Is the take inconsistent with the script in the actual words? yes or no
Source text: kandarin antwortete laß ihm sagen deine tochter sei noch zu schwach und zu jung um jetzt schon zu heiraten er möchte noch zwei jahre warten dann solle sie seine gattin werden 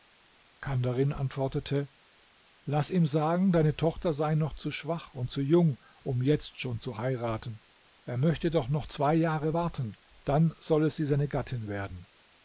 yes